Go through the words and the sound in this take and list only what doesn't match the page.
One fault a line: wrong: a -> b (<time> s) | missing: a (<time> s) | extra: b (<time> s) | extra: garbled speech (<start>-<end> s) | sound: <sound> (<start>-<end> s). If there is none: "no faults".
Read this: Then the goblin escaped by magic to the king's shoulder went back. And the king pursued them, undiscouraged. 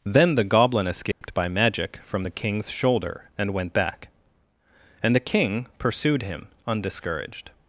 sound: dropout (1.1-1.2 s)
wrong: to -> from (2.0 s)
extra: and (3.4 s)
wrong: them -> him (6.2 s)